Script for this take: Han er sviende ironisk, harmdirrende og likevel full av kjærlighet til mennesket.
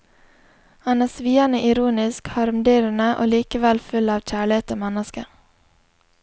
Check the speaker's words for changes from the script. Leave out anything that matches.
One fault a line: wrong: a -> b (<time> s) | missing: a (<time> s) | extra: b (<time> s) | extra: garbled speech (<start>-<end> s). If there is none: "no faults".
no faults